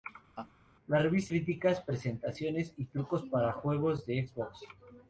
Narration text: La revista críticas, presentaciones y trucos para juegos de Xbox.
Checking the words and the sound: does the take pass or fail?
fail